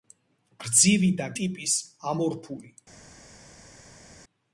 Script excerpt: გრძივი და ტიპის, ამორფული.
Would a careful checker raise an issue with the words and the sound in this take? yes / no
no